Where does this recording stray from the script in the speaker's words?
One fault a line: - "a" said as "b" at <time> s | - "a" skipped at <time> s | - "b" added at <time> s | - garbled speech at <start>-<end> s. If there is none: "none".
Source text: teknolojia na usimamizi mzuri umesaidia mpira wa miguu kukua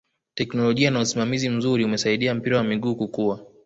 none